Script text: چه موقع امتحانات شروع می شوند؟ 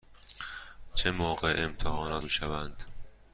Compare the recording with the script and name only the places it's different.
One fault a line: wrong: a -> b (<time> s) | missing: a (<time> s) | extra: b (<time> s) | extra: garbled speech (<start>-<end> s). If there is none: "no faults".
missing: شروع (2.2 s)